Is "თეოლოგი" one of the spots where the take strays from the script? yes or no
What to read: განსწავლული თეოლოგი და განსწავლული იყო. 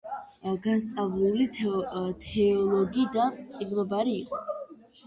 no